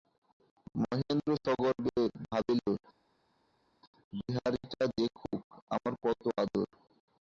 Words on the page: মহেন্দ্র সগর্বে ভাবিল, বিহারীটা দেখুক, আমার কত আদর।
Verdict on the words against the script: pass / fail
pass